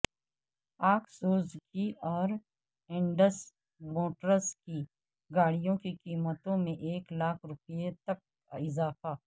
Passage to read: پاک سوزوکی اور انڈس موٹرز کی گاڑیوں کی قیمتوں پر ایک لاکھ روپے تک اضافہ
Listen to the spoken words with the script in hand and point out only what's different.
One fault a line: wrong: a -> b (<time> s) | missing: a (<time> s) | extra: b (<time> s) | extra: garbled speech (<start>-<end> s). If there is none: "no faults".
wrong: پر -> میں (6.6 s)